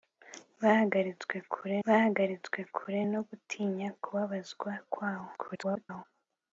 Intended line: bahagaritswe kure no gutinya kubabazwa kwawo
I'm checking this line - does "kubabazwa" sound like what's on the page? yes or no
yes